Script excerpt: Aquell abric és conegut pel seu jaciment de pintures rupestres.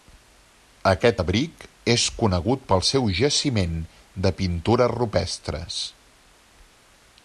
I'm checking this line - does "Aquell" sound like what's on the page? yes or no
no